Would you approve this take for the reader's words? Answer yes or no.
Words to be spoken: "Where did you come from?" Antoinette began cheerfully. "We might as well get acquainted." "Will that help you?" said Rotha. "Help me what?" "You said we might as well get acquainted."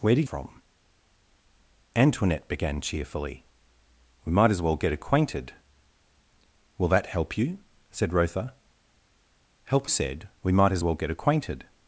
no